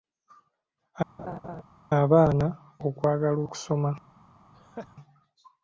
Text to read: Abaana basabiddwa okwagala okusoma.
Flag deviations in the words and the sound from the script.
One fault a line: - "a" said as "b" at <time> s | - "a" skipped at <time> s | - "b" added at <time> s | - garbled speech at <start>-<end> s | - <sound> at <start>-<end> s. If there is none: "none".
- laugh at 1.2-1.6 s
- "basabiddwa" skipped at 2.5 s
- laugh at 4.5-5.0 s